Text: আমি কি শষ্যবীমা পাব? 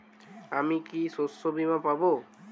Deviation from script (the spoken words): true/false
false